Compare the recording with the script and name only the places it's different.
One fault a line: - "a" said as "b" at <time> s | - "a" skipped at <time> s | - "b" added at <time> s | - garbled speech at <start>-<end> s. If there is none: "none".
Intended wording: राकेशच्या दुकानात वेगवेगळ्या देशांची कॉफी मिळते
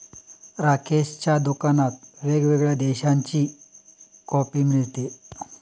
none